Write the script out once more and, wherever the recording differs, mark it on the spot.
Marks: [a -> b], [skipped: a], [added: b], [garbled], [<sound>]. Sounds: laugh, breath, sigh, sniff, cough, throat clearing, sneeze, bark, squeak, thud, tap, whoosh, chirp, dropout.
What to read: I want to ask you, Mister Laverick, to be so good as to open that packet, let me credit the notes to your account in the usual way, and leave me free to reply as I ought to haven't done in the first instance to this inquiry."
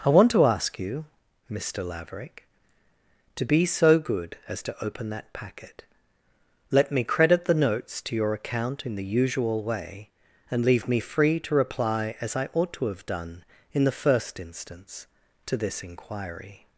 I want to ask you, Mister Laverick, to be so good as to open that packet, let me credit the notes to your account in the usual way, and leave me free to reply as I ought to [haven't -> have] done in the first instance to this inquiry."